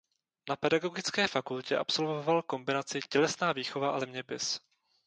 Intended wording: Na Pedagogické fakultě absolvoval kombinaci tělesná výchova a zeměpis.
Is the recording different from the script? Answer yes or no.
no